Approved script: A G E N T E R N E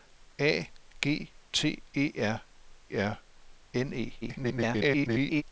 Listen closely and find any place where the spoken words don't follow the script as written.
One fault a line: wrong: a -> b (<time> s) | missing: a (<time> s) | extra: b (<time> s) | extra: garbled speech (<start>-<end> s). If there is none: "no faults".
missing: E N (1.3 s)
extra: R (2.9 s)
extra: garbled speech (4.2-5.4 s)